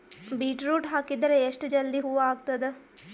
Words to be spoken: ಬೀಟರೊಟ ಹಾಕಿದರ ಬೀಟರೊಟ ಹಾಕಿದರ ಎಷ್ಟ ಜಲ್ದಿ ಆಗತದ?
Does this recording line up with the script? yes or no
no